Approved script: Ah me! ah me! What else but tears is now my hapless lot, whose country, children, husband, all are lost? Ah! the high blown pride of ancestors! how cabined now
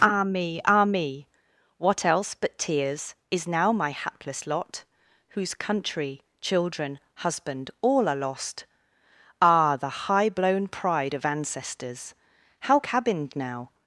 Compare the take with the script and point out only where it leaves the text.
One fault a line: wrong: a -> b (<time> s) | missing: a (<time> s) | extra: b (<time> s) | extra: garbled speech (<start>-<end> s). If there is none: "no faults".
no faults